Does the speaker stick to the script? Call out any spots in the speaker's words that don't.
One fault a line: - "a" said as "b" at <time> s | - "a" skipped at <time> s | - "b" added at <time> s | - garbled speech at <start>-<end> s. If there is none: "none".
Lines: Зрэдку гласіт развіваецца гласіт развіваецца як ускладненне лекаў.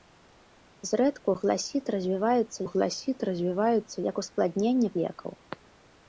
none